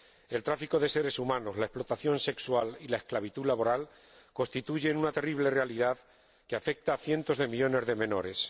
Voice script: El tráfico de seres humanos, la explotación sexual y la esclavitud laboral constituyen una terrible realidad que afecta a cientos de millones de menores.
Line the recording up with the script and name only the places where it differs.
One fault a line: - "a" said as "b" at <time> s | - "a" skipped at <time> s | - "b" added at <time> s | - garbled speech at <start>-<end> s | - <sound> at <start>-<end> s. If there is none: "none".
none